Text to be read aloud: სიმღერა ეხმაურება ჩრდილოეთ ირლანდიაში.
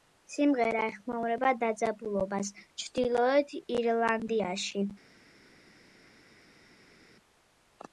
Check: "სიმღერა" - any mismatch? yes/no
no